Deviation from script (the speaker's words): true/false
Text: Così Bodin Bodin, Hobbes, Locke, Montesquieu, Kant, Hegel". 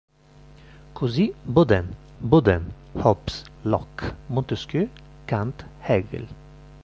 false